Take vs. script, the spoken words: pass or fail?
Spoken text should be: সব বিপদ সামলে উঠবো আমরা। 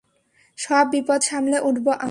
pass